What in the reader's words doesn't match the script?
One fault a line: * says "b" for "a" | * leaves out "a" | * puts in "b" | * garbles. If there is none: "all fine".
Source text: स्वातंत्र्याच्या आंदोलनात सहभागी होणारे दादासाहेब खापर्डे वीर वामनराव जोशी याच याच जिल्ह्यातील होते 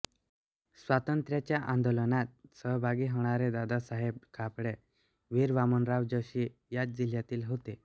* leaves out "याच"